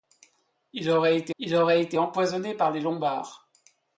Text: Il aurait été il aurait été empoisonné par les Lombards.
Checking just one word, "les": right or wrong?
right